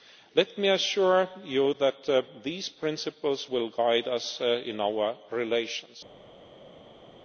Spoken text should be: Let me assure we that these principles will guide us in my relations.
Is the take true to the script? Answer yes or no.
no